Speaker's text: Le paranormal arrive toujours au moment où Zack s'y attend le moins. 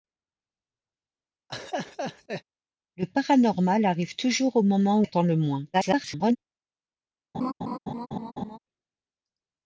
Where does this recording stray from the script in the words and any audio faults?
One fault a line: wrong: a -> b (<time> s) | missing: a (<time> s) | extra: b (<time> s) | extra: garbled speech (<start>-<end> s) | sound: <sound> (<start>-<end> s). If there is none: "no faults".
sound: laugh (1.5-2.4 s)
missing: où Zack s'y (5.0 s)
extra: garbled speech (5.7-6.4 s)
sound: laugh (7.3-8.6 s)